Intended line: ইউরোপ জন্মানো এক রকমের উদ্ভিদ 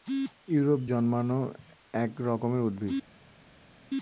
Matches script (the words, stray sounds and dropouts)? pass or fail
pass